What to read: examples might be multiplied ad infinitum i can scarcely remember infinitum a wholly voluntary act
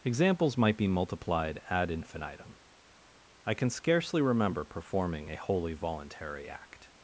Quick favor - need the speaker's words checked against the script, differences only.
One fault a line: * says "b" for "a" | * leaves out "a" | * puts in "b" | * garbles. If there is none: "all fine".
* says "performing" for "infinitum"